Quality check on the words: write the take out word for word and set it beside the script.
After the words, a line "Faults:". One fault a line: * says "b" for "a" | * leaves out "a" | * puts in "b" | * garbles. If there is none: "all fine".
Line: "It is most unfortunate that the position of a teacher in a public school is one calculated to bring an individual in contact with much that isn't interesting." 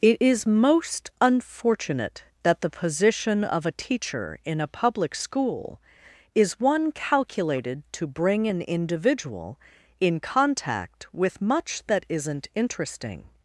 "It is most unfortunate that the position of a teacher in a public school is one calculated to bring an individual in contact with much that isn't interesting."
Faults:
all fine